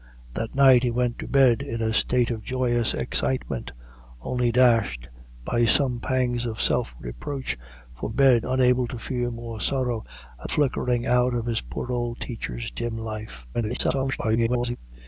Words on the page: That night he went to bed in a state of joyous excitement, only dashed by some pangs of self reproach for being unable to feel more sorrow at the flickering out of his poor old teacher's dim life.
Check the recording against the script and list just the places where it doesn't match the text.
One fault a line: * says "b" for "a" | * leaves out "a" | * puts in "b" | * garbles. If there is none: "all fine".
* says "bed" for "being"
* leaves out "the"
* garbles